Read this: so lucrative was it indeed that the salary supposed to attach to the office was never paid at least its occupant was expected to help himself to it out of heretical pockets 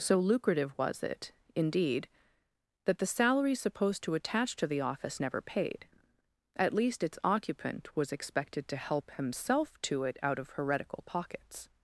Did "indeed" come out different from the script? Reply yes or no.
no